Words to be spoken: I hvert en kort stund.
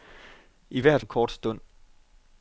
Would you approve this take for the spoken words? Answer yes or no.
yes